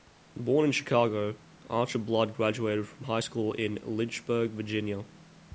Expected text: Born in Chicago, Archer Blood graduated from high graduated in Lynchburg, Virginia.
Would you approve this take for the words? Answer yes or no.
no